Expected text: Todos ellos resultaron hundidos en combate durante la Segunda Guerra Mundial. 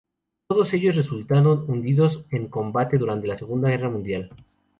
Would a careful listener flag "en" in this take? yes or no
no